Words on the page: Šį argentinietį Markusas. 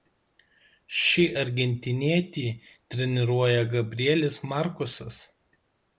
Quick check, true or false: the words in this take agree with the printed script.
false